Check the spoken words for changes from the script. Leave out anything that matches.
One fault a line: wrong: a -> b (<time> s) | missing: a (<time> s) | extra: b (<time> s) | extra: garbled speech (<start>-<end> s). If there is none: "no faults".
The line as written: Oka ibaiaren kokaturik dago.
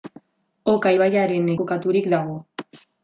no faults